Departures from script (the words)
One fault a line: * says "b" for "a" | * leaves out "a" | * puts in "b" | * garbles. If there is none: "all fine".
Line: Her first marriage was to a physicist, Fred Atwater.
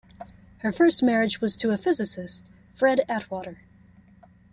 all fine